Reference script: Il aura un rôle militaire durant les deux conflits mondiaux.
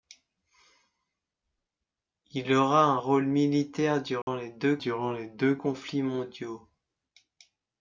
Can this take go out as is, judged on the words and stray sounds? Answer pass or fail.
fail